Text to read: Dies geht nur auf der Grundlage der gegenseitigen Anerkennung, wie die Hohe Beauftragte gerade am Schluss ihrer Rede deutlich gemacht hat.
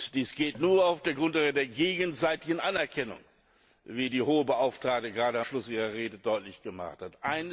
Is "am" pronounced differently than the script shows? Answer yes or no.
yes